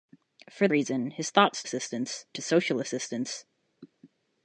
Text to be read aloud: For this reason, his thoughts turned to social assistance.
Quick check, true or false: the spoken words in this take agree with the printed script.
false